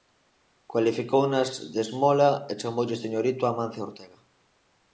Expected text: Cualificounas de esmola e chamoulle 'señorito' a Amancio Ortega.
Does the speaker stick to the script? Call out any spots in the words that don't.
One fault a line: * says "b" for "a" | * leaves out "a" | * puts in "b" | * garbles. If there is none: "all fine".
all fine